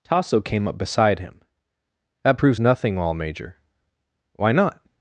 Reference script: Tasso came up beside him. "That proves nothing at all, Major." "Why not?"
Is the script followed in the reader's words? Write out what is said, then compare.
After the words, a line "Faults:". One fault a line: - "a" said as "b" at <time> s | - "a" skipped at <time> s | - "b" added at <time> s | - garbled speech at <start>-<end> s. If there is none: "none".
Tasso came up beside him. "That proves nothing all, Major." "Why not?"
Faults:
- "at" skipped at 3.0 s